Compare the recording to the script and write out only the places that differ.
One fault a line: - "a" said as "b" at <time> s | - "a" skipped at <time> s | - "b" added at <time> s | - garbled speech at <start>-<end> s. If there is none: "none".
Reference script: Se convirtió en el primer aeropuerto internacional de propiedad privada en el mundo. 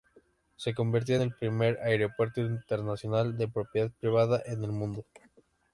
- "en" skipped at 1.1 s